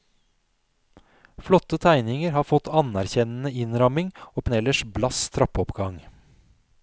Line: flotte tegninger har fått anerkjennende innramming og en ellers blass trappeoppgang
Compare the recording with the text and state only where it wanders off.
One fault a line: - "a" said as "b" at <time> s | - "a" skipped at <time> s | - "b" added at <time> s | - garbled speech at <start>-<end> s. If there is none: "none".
none